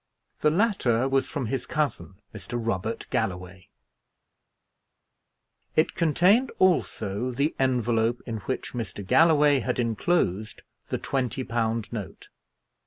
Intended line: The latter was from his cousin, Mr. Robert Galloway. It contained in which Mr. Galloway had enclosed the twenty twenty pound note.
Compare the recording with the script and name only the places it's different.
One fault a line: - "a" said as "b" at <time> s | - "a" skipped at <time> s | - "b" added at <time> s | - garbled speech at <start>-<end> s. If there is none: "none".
- "also the envelope" added at 6.6 s
- "twenty" skipped at 11.4 s